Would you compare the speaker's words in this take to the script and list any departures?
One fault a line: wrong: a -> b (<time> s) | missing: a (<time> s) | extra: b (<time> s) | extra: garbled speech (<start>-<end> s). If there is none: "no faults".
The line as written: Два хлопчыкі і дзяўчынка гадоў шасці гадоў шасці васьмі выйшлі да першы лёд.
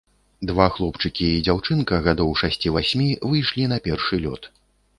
missing: гадоў шасці (2.7 s)
wrong: да -> на (3.8 s)